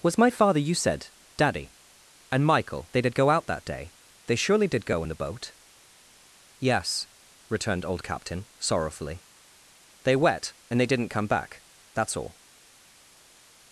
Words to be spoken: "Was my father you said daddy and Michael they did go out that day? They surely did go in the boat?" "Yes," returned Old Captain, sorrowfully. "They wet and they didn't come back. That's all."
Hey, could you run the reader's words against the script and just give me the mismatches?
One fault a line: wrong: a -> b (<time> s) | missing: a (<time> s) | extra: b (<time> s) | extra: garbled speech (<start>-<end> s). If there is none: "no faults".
no faults